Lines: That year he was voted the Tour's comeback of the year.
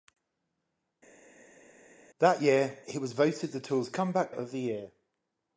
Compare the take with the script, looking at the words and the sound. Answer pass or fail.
pass